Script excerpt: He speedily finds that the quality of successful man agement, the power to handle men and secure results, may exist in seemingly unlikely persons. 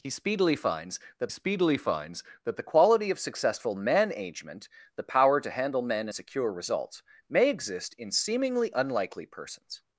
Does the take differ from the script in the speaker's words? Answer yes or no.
yes